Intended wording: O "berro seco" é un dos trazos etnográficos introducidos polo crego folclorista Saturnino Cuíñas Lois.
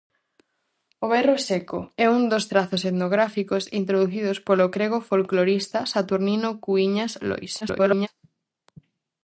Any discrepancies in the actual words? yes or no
yes